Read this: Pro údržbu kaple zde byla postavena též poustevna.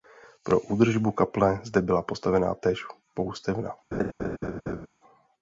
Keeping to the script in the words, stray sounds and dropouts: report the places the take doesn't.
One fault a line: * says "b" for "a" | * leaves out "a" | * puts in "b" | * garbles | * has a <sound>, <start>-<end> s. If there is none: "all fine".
* has a laugh, 3.9-4.9 s